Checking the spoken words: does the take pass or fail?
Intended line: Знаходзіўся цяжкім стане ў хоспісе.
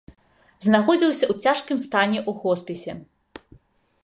fail